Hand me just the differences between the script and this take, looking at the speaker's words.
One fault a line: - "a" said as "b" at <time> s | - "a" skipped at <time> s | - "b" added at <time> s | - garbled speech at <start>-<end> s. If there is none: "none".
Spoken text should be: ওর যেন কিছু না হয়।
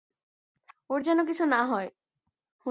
none